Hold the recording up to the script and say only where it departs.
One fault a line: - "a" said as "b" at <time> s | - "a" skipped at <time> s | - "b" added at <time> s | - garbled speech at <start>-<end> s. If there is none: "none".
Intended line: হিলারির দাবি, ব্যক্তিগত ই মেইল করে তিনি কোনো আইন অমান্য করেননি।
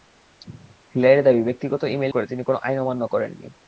none